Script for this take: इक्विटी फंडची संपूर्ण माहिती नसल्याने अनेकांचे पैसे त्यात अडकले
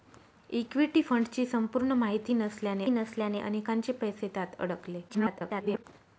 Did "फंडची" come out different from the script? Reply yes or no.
no